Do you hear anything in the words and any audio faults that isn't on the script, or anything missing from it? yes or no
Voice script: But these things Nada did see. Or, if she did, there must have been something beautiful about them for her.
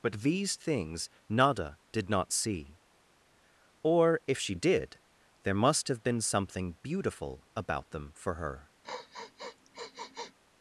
yes